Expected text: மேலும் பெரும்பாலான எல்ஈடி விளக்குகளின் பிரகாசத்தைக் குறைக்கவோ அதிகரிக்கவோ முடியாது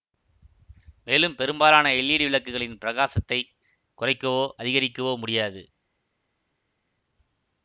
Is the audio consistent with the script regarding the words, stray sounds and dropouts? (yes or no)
yes